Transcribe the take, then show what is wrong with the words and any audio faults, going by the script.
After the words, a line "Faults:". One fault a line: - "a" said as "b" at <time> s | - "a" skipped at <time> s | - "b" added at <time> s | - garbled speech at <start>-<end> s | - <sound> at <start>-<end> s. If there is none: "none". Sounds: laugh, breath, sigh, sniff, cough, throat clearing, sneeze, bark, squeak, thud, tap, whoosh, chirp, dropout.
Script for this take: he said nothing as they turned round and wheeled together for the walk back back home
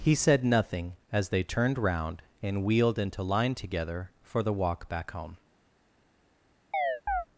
he said nothing as they turned round and wheeled into line together for the walk back home
Faults:
- "into line" added at 3.0 s
- "back" skipped at 5.1 s
- chirp at 6.7-7.3 s